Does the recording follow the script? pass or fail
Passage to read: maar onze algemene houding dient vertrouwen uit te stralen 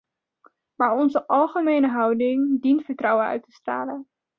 pass